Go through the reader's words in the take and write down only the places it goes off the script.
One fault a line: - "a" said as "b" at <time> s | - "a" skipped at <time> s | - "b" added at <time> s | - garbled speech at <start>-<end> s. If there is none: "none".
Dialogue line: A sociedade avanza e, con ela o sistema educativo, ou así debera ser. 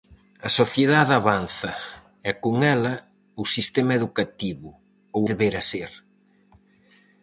- "así" skipped at 5.2 s